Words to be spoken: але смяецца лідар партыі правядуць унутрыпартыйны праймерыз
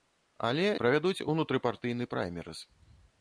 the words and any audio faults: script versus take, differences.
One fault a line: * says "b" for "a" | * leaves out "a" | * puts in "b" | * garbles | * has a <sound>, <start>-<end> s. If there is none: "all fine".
* leaves out "смяецца лідар партыі"